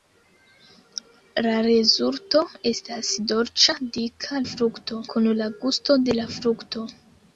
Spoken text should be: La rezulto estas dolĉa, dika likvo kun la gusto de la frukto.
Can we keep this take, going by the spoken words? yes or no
no